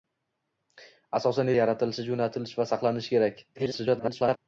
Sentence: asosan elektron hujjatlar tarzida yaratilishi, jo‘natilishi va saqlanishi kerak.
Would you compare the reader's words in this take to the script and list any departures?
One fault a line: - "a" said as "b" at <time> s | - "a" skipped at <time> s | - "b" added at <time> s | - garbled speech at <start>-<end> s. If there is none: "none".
- "elektron hujjatlar tarzida" skipped at 1.5 s
- garbled speech at 3.5-4.4 s